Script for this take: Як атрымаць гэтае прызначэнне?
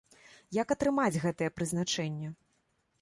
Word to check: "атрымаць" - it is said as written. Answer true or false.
true